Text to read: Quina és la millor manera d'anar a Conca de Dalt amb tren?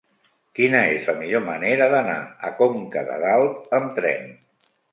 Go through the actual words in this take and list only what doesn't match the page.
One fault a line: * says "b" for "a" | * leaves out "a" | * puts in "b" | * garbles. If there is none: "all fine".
all fine